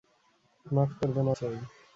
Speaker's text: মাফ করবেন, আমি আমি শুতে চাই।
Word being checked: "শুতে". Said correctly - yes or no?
no